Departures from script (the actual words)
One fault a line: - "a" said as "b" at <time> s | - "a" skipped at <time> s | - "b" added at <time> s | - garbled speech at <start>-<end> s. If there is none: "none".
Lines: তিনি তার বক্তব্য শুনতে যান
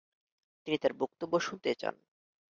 none